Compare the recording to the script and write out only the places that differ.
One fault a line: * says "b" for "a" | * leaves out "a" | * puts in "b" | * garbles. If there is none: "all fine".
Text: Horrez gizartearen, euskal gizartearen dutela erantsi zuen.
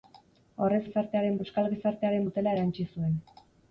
all fine